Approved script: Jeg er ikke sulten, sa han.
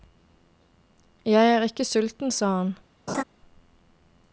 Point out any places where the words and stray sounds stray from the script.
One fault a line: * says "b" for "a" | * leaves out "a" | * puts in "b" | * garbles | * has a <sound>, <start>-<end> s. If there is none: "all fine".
* has a laugh, 3.1-3.2 s